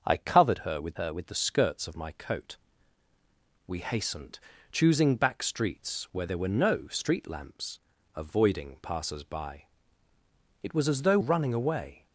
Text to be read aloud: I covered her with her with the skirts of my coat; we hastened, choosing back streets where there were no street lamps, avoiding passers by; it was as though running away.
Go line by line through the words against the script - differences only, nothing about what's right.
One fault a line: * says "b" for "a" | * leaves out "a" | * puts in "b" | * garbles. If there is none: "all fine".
all fine